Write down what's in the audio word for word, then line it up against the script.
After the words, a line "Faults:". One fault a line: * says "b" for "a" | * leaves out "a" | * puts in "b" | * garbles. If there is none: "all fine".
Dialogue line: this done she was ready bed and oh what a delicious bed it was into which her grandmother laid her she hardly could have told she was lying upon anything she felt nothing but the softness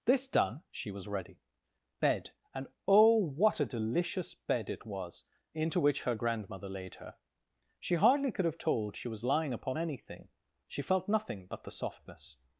this done she was ready bed and oh what a delicious bed it was into which her grandmother laid her she hardly could have told she was lying upon anything she felt nothing but the softness
Faults:
all fine